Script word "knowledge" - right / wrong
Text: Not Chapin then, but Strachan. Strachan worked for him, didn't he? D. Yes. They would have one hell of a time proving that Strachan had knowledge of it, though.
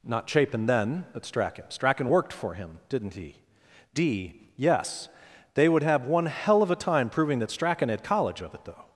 wrong